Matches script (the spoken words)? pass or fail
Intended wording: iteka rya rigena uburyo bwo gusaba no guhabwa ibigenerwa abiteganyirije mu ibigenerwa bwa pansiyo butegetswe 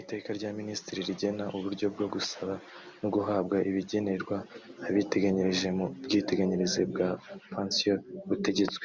fail